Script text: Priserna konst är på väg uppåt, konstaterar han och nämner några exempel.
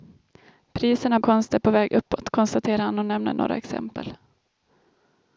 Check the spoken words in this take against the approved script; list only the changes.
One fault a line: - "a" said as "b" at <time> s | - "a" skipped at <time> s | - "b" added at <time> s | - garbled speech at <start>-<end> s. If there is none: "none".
none